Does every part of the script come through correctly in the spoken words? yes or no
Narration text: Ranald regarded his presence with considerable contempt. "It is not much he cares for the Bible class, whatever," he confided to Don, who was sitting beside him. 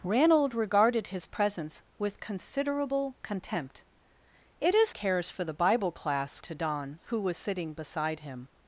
no